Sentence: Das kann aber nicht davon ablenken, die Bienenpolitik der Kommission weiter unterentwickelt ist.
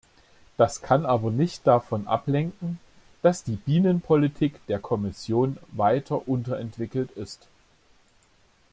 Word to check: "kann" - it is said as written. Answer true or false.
true